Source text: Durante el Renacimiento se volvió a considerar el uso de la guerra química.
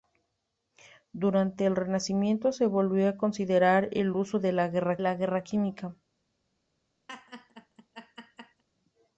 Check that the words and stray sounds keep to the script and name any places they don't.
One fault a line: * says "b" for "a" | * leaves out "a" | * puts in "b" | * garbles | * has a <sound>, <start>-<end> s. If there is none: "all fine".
* puts in "la guerra"
* has a laugh, 7.1-8.6 s